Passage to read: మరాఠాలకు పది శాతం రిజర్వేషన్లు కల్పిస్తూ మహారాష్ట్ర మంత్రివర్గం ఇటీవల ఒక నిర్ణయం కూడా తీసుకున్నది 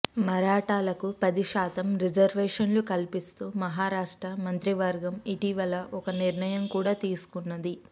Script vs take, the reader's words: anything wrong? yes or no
no